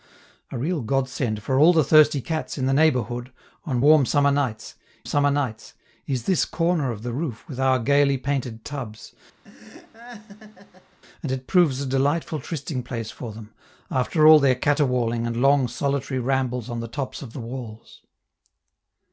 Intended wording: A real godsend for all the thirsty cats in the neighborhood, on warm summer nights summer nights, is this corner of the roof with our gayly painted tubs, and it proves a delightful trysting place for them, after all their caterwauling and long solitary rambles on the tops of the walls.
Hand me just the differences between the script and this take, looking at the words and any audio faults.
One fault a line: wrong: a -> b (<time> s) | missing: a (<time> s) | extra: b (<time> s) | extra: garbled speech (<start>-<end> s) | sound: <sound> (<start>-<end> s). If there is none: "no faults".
sound: laugh (9.4-11.0 s)